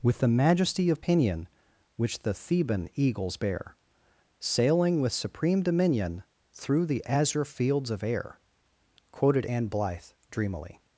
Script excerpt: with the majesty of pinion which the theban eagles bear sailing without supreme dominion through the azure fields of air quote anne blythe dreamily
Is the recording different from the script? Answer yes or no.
yes